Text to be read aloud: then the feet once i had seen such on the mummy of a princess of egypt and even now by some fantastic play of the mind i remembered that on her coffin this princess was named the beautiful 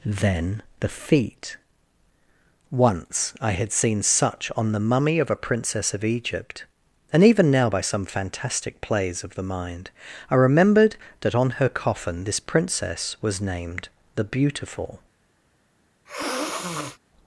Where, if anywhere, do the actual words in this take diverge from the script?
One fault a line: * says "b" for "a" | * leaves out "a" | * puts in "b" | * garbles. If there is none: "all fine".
* says "plays" for "play"